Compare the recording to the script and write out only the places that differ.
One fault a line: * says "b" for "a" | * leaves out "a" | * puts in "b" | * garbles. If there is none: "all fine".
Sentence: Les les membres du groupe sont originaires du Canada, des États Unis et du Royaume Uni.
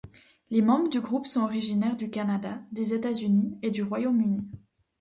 * leaves out "les"